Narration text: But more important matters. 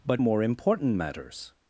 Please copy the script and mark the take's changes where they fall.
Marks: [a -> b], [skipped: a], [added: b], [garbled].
But more important matters.